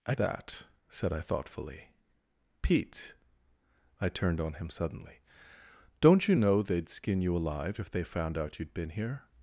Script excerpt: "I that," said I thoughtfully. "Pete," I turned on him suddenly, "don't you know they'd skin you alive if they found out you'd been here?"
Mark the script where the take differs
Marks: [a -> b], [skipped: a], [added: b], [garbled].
"I that," said I thoughtfully. "Pete," I turned on him suddenly, "don't you know they'd skin you alive if they found out you'd been here?"